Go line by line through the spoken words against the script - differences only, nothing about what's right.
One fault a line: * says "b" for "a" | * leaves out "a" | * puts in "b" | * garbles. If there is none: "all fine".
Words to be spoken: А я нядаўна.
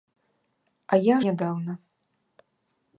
all fine